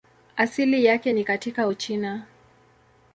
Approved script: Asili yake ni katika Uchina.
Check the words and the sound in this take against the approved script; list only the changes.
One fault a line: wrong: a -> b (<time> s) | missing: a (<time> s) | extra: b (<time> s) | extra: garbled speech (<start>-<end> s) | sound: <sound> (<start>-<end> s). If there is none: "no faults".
no faults